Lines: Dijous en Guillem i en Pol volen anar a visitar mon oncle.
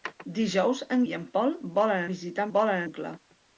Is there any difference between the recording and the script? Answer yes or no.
yes